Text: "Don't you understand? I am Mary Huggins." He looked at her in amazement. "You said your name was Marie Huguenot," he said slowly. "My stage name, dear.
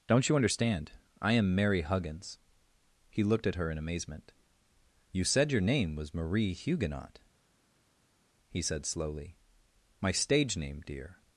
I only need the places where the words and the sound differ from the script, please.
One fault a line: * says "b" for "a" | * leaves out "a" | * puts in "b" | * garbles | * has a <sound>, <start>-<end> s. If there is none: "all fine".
all fine